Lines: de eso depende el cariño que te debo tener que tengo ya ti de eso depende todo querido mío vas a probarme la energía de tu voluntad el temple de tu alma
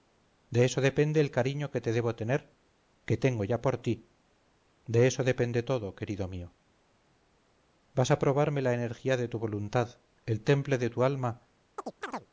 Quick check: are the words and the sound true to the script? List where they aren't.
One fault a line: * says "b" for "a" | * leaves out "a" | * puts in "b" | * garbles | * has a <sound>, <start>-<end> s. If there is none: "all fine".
* puts in "por"
* has a chirp, 11.8-12.3 s